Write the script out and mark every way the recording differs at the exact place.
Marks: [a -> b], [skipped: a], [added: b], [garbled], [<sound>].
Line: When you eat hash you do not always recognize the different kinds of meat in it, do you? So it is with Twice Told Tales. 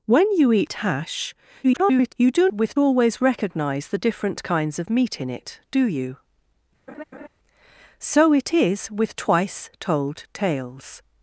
When you eat hash [garbled] you do [not -> with] always recognize the different kinds of meat in it, do you? [laugh] So it is with Twice Told Tales.